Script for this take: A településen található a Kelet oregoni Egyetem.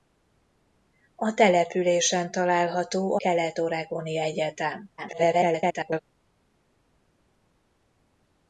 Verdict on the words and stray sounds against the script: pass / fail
fail